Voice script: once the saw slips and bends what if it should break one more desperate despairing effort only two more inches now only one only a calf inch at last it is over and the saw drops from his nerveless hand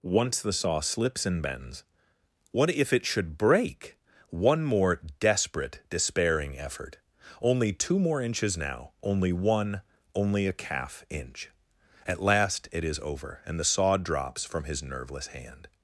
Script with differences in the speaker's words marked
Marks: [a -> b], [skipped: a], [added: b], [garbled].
once the saw slips and bends what if it should break one more desperate despairing effort only two more inches now only one only a calf inch at last it is over and the saw drops from his nerveless hand